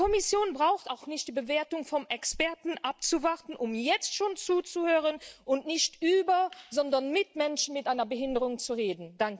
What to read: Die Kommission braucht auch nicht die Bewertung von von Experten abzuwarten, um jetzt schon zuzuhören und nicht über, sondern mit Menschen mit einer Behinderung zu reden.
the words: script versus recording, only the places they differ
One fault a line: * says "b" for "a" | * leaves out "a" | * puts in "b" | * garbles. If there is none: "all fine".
* leaves out "von"